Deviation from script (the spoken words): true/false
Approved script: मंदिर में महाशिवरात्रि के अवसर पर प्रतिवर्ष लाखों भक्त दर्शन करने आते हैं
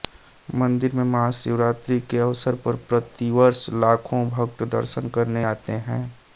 false